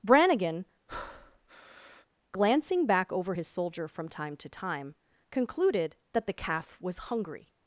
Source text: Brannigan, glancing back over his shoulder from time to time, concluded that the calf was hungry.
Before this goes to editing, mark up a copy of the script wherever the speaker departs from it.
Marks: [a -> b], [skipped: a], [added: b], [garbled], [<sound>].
Brannigan, [breath] glancing back over his [shoulder -> soldier] from time to time, concluded that the calf was hungry.